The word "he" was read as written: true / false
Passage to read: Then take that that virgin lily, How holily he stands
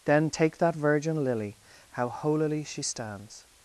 false